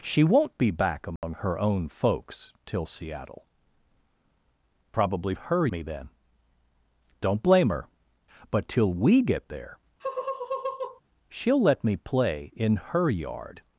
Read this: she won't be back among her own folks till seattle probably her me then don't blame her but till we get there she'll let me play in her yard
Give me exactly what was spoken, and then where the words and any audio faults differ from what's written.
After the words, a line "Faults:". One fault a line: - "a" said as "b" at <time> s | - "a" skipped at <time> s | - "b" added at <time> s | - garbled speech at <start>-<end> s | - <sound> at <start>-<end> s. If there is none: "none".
she won't be back among her own folks till seattle probably her me then don't blame her but till we get there she'll let me play in her yard
Faults:
- dropout at 1.2-1.2 s
- laugh at 10.0-11.0 s